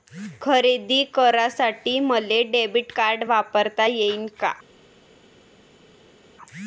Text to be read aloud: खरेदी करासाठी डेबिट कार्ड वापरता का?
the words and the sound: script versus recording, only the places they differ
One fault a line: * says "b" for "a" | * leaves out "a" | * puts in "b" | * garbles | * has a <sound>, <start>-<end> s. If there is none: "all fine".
* puts in "मले"
* puts in "येईन"